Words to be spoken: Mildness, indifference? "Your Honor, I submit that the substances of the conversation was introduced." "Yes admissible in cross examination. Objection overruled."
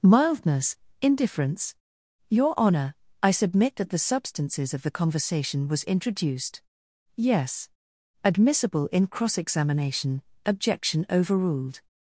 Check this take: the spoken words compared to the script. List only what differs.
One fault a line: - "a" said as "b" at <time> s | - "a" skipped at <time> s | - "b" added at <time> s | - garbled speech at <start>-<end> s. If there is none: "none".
none